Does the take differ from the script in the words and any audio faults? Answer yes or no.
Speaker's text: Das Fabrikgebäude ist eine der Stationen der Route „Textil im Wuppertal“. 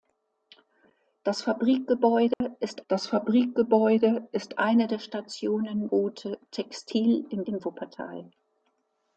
yes